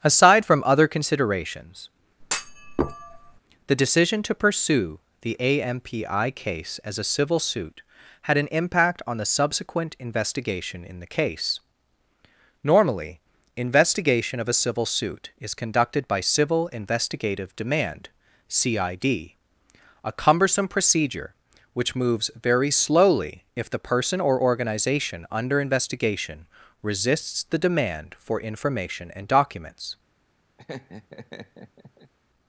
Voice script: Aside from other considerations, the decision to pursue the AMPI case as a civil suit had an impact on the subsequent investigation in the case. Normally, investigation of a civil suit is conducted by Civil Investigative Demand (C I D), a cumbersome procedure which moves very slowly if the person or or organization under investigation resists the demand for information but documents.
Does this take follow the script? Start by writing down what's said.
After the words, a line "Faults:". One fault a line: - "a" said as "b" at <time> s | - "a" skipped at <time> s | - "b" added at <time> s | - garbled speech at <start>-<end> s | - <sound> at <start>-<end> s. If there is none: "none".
Aside from other considerations, the decision to pursue the AMPI case as a civil suit had an impact on the subsequent investigation in the case. Normally, investigation of a civil suit is conducted by Civil Investigative Demand (C I D), a cumbersome procedure which moves very slowly if the person or organization under investigation resists the demand for information and documents.
Faults:
- thud at 2.2-3.4 s
- "or" skipped at 24.4 s
- "but" said as "and" at 29.1 s
- laugh at 30.6-32.1 s